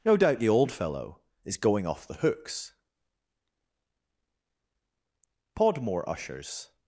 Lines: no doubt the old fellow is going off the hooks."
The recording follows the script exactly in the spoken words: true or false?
false